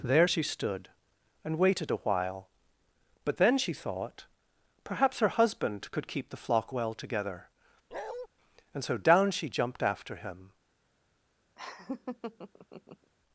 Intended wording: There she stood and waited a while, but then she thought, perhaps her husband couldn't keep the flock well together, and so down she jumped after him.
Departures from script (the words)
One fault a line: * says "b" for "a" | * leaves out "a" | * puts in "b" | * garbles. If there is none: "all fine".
* says "could" for "couldn't"